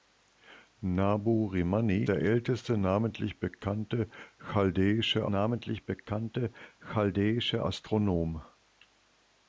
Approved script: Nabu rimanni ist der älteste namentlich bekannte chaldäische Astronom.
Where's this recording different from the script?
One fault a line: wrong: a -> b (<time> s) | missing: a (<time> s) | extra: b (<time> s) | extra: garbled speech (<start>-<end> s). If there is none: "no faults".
missing: ist (2.0 s)
extra: namentlich bekannte chaldäische (5.2 s)